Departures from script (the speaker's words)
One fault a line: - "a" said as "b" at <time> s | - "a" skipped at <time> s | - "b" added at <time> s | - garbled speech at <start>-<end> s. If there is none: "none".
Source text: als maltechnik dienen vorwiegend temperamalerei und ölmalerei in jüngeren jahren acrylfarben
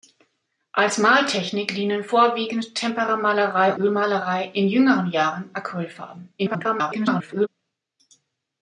- "und" skipped at 3.8 s
- garbled speech at 6.4-7.5 s